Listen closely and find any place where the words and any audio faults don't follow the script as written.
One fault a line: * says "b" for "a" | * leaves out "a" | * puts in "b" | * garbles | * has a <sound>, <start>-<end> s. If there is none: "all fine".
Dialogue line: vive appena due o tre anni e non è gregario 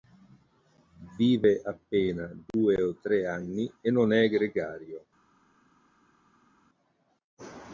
all fine